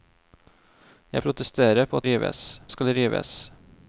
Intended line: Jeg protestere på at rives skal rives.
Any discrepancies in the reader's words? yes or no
no